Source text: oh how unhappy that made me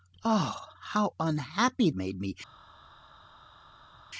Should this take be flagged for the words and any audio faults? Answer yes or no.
yes